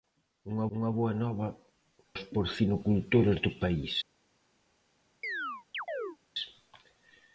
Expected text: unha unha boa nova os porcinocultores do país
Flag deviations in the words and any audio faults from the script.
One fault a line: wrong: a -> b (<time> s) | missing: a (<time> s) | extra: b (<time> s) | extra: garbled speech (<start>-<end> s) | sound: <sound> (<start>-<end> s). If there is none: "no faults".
sound: chirp (5.2-6.2 s)